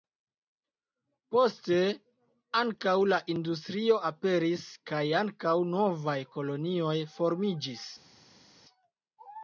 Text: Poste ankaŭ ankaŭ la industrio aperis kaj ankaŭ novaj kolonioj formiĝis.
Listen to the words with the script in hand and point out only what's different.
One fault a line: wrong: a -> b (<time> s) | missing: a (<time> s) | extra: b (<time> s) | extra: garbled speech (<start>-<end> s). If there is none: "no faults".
missing: ankaŭ (3.0 s)